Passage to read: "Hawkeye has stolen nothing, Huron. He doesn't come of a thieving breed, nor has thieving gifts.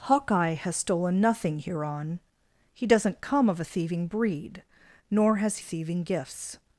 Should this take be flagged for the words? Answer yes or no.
no